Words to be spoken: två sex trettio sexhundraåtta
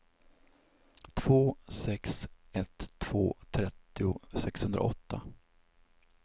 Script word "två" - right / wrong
right